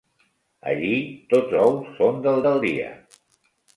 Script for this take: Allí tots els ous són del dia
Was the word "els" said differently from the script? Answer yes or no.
yes